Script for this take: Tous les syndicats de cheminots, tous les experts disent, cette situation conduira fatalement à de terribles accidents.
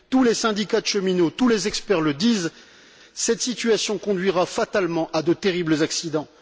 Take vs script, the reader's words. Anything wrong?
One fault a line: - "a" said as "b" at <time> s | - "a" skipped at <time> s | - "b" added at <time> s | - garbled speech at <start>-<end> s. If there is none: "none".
- "le" added at 2.0 s